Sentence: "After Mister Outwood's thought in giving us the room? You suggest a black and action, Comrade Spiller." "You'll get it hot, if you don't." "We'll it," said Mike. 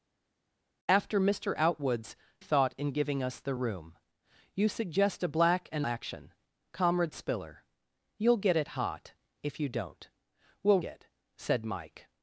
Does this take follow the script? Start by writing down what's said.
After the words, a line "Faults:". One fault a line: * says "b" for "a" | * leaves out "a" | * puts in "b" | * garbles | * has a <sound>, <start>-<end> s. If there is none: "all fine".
"After Mister Outwood's thought in giving us the room? You suggest a black and action, Comrade Spiller." "You'll get it hot, if you don't." "We'll it," said Mike.
Faults:
all fine